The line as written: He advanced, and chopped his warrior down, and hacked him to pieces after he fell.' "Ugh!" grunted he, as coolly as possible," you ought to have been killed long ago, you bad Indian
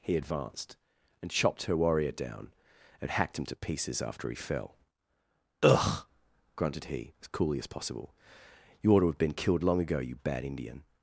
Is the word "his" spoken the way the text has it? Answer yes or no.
no